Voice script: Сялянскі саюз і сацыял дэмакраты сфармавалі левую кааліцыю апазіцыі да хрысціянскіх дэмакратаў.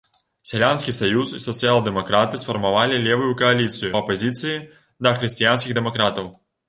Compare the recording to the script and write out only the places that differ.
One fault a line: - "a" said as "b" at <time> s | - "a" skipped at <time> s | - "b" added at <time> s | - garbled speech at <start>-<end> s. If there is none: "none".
none